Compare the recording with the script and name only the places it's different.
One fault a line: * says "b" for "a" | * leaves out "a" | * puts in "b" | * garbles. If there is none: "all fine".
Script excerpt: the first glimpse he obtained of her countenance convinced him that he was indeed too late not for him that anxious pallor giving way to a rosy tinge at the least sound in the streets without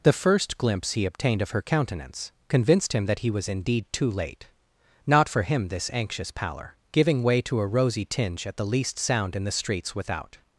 * says "this" for "that"